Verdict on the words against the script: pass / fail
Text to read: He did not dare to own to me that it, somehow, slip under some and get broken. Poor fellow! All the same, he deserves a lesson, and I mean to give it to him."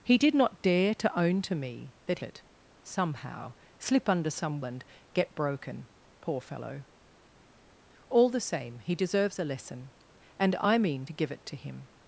pass